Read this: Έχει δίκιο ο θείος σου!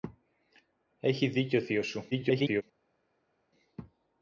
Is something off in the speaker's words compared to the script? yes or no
yes